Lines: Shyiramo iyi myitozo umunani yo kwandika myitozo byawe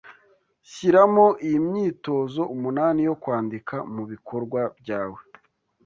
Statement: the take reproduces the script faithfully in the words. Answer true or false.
false